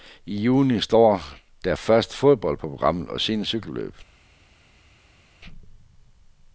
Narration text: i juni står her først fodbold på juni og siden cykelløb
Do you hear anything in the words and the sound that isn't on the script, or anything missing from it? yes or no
yes